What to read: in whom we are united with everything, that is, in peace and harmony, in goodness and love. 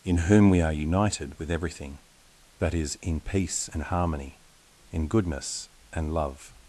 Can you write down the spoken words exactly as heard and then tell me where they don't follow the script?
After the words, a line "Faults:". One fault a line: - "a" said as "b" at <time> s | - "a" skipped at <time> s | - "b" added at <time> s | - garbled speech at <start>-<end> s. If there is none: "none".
in whom we are united with everything, that is, in peace and harmony, in goodness and love.
Faults:
none